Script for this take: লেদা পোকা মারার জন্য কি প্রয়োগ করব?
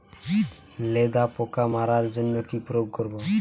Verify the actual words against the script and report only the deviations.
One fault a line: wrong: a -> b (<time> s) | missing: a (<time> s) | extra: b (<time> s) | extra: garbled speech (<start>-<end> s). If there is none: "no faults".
no faults